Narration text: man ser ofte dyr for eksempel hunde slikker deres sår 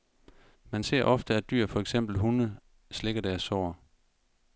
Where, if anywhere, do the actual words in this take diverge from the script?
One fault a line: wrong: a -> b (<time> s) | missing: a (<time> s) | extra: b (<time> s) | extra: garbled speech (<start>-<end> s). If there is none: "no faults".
extra: at (1.4 s)